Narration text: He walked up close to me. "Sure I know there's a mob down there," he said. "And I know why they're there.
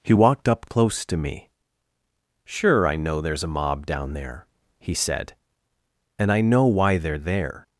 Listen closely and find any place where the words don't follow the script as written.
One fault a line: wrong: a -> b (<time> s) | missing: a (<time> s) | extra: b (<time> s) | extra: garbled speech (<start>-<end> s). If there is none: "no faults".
no faults